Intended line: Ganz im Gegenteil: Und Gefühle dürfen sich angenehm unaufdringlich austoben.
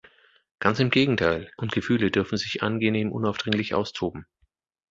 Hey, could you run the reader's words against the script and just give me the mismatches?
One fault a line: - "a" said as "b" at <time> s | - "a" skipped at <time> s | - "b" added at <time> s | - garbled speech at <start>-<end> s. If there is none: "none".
none